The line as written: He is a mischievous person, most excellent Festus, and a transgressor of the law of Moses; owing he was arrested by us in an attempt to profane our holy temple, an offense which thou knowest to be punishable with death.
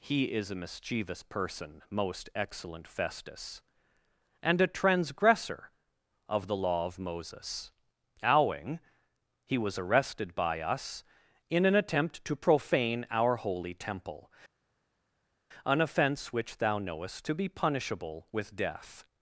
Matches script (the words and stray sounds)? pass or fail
pass